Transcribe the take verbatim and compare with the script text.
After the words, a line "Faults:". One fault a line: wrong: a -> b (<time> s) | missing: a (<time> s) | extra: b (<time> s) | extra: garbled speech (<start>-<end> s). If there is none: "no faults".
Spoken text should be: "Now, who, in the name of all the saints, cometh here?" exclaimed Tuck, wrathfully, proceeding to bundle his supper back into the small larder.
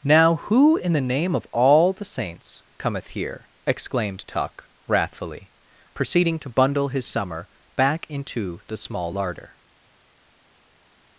"Now, who, in the name of all the saints, cometh here?" exclaimed Tuck, wrathfully, proceeding to bundle his summer back into the small larder.
Faults:
wrong: supper -> summer (7.0 s)